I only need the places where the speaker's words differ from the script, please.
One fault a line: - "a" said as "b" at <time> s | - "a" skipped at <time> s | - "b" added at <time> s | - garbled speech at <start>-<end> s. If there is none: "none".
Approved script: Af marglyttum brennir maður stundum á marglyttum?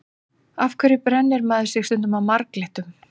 - "marglyttum" said as "hverju" at 0.8 s
- "sig" added at 1.7 s